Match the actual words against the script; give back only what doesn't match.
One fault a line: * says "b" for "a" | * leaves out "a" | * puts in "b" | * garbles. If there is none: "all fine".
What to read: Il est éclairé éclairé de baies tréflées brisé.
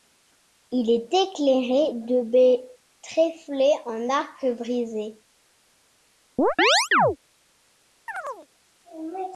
* leaves out "éclairé"
* puts in "en arc"